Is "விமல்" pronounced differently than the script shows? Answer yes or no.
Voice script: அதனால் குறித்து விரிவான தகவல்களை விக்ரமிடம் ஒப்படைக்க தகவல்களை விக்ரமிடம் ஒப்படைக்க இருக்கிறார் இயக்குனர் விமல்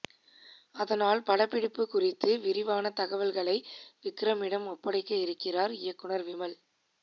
no